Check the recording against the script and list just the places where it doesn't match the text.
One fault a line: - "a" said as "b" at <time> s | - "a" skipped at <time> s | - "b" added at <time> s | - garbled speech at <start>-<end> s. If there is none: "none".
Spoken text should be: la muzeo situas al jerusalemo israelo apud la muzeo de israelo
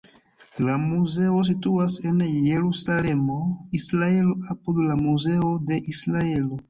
- "al" said as "en" at 2.1 s